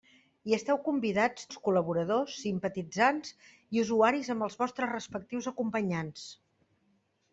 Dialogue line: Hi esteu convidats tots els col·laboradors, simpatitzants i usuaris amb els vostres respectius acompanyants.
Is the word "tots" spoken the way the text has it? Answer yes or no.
no